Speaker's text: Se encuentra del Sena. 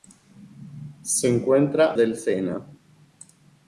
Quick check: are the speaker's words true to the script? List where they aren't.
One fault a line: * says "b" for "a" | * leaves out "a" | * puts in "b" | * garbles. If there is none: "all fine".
all fine